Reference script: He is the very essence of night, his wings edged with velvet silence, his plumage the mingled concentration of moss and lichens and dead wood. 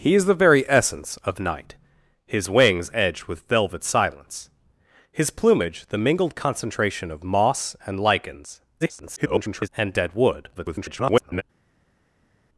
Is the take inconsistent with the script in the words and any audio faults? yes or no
yes